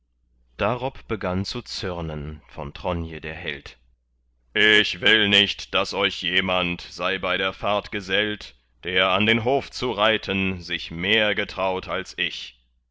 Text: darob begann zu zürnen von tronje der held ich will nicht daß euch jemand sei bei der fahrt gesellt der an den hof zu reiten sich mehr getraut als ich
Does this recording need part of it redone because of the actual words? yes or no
no